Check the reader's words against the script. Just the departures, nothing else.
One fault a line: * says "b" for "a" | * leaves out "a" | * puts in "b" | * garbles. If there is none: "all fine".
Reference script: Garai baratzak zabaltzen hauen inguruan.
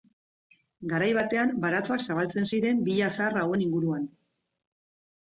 * puts in "batean"
* puts in "ziren villa zahar"